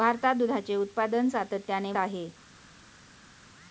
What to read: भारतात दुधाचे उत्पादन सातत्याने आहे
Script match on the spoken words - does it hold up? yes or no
yes